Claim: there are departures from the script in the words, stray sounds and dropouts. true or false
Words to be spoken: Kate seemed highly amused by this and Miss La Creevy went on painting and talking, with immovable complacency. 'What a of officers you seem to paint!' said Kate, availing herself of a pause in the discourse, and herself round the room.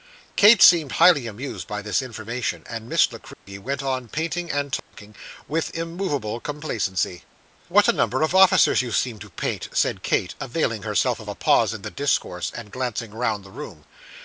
true